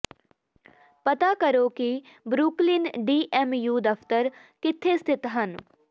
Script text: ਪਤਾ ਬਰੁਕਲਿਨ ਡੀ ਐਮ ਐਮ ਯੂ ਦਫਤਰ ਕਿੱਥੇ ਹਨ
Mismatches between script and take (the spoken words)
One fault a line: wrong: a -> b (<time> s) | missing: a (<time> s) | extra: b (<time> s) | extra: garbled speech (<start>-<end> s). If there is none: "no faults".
extra: ਕਰੋ ਕਿ (1.4 s)
missing: ਐਮ (3.5 s)
extra: ਸਥਿਤ (5.0 s)